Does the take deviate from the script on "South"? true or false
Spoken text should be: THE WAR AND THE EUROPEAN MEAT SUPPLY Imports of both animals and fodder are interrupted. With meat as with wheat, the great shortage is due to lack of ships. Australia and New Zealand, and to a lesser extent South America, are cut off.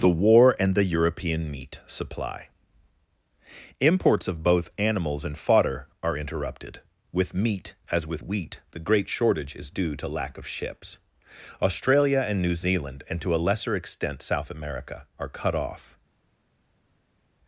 false